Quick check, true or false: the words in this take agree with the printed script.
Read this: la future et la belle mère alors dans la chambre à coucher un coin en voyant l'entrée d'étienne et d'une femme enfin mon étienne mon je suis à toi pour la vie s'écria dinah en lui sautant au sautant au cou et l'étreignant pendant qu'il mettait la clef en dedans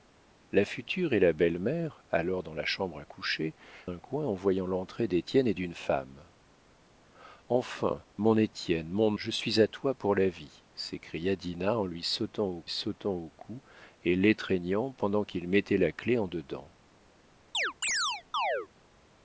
true